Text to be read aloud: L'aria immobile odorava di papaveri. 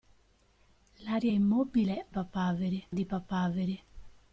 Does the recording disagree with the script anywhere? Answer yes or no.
yes